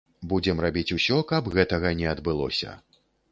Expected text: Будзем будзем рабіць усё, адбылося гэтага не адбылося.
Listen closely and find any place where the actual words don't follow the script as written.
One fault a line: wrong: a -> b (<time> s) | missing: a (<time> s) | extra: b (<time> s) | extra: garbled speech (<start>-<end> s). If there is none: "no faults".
missing: будзем (0.6 s)
wrong: адбылося -> каб (1.3 s)